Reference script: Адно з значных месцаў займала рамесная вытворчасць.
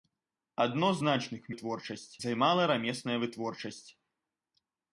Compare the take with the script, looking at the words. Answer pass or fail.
fail